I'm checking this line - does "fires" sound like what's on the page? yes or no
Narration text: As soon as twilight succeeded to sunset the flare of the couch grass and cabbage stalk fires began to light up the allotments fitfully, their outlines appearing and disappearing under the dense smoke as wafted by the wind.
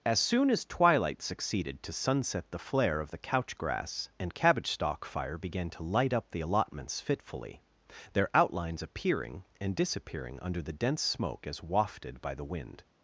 no